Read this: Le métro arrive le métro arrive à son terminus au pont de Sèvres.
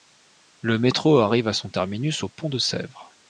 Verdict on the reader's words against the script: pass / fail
fail